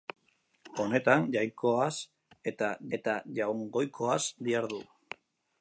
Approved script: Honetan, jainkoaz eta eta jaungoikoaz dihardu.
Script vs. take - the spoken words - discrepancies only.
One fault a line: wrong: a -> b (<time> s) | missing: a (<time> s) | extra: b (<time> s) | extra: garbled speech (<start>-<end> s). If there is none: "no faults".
no faults